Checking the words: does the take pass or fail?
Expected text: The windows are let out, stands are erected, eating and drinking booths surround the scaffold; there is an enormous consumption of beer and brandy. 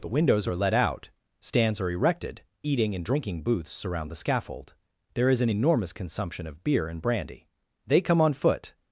fail